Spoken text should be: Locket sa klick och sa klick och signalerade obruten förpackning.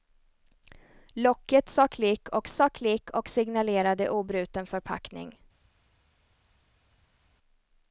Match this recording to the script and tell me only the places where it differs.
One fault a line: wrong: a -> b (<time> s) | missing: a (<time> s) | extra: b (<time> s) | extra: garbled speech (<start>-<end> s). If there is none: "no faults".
no faults